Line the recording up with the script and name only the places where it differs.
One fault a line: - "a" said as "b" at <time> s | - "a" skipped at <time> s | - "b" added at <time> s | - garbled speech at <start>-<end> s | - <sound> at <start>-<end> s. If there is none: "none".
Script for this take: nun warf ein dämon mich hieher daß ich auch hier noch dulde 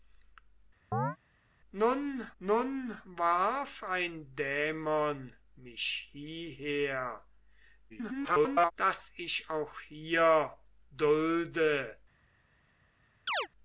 - chirp at 0.9-1.2 s
- "nun" added at 2.4 s
- garbled speech at 7.9-8.7 s
- "noch" skipped at 10.6 s
- chirp at 13.3-13.5 s